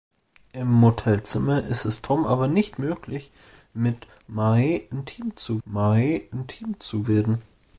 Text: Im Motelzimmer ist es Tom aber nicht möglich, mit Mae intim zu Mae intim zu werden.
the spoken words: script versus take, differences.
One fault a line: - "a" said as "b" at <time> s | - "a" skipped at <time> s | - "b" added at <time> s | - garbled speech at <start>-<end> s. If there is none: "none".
none